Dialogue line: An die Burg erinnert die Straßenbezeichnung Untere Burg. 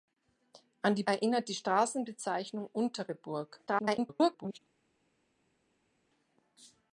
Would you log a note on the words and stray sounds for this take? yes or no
yes